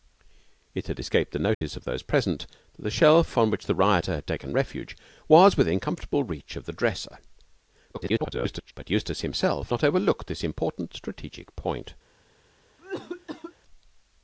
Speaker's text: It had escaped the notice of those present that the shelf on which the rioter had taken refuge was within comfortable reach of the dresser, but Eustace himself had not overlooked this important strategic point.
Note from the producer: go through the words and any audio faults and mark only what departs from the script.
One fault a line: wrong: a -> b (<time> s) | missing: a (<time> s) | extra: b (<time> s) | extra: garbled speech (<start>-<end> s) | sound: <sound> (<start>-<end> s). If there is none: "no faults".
sound: dropout (1.5-1.6 s)
extra: garbled speech (7.9-8.7 s)
missing: had (9.7 s)
sound: cough (12.8-13.5 s)